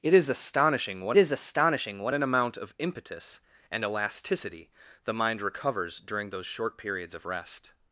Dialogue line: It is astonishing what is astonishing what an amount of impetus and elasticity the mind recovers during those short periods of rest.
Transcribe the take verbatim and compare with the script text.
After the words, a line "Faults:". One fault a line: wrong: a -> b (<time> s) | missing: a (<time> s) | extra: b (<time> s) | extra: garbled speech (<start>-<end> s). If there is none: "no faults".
It is astonishing what is astonishing what an amount of impetus and elasticity the mind recovers during those short periods of rest.
Faults:
no faults